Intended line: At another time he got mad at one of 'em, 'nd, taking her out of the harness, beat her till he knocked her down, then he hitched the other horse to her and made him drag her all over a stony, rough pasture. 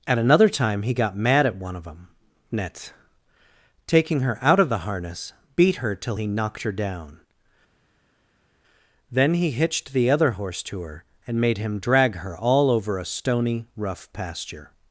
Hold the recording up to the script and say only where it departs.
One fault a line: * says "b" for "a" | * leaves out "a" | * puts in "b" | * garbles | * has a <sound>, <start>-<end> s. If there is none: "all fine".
* says "them net" for "em nd"